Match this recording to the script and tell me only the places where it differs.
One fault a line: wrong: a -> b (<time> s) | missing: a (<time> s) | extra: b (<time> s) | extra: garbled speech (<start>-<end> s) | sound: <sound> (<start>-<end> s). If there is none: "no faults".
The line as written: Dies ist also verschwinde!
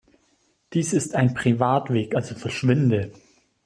extra: ein Privatweg (1.1 s)